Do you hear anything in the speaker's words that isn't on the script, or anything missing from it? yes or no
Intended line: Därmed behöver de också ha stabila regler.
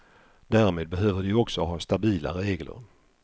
no